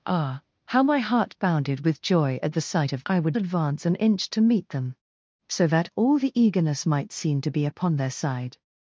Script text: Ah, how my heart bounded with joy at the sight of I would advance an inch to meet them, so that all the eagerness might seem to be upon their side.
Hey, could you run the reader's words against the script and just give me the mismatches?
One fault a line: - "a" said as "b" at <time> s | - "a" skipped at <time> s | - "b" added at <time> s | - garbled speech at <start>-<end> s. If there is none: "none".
none